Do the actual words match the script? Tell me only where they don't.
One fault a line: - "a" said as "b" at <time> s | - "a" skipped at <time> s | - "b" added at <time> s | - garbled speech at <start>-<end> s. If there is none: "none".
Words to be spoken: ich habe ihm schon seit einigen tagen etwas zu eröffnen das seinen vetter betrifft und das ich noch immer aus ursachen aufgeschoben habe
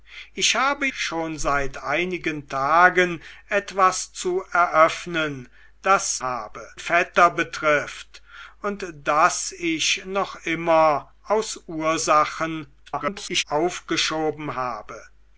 - "ihm" skipped at 0.9 s
- "seinen" said as "habe" at 6.2 s
- garbled speech at 12.9-13.4 s